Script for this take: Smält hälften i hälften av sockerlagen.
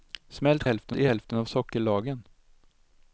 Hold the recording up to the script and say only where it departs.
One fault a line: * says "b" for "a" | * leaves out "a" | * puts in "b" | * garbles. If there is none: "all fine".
all fine